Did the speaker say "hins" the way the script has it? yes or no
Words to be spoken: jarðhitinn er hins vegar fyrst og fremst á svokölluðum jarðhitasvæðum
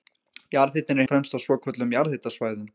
no